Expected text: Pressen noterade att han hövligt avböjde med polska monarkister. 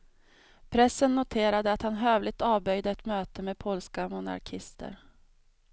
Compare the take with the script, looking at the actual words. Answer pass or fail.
fail